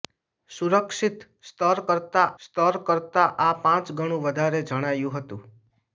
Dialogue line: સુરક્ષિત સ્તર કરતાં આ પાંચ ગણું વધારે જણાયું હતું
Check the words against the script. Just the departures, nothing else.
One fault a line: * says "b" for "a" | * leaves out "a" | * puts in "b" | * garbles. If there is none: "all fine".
* puts in "સ્તર કરતાં"